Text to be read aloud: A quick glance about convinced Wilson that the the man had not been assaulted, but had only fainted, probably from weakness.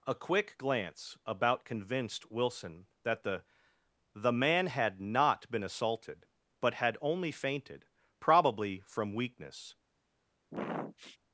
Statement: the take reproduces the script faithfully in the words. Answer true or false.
true